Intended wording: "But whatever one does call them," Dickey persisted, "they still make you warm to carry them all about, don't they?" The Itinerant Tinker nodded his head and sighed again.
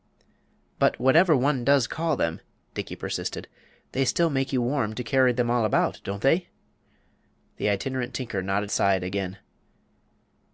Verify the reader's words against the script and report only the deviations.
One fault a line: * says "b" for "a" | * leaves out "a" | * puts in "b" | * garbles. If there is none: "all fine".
* leaves out "his head and"